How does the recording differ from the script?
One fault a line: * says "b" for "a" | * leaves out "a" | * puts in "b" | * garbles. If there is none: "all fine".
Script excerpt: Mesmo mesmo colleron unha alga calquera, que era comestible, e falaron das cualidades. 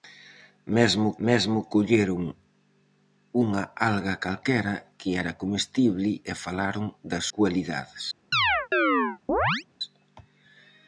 all fine